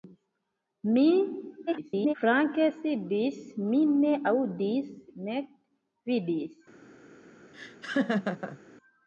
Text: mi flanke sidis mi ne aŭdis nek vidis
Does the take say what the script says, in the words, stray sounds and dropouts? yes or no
no